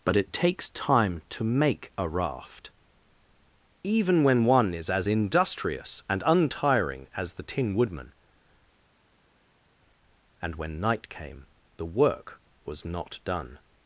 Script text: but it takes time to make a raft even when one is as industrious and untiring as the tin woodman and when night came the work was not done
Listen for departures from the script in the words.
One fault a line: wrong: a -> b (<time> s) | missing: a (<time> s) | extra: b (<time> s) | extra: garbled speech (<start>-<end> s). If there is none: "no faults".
no faults